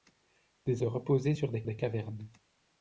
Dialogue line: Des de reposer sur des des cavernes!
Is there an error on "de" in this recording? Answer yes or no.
no